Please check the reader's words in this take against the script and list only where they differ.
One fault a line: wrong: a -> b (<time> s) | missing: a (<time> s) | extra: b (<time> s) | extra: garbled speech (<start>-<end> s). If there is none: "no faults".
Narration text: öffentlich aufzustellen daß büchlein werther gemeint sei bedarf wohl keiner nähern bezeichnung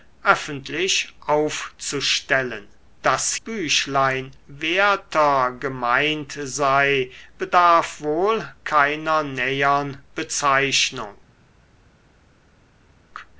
no faults